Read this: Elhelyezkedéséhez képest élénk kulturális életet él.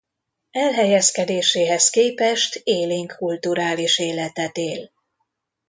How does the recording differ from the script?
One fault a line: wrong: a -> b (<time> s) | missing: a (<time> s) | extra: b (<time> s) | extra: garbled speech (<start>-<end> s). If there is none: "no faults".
no faults